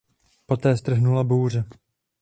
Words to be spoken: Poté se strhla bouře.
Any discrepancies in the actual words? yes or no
yes